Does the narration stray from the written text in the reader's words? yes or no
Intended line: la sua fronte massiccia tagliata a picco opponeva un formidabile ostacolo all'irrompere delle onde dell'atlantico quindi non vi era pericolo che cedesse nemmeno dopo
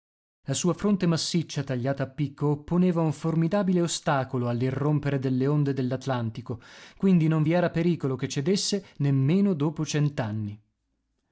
no